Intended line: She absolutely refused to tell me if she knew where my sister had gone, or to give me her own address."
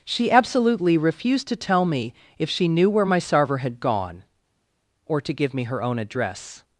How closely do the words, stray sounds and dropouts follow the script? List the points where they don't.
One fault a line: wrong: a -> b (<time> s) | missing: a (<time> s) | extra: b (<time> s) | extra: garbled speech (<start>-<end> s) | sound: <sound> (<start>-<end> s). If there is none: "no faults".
wrong: sister -> sarver (3.2 s)